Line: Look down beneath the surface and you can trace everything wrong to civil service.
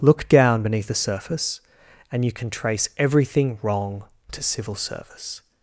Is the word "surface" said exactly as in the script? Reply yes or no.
yes